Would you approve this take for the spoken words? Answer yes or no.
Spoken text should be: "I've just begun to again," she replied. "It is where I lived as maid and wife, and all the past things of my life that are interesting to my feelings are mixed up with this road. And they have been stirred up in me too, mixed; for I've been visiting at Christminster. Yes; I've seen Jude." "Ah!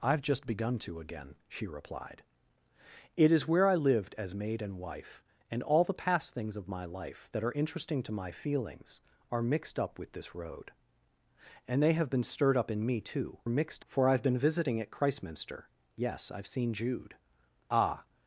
yes